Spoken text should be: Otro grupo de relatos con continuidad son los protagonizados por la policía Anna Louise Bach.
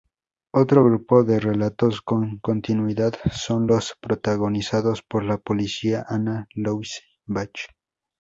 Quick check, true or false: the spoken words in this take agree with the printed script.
true